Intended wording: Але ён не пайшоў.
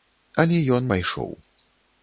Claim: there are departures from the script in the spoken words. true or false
true